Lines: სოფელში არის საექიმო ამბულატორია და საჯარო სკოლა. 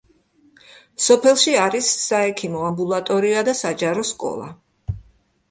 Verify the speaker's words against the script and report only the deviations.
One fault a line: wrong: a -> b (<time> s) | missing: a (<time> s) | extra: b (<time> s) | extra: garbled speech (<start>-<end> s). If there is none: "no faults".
no faults